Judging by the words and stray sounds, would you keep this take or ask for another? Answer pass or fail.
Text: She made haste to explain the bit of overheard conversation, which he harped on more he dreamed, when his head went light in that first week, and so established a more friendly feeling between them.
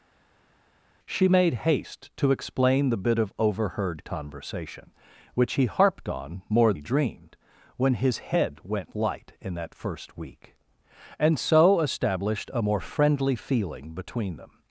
pass